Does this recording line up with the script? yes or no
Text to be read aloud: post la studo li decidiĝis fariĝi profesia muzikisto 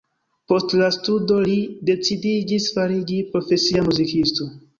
yes